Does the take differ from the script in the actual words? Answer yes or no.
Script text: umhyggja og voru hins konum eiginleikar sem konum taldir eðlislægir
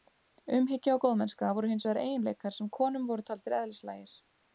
yes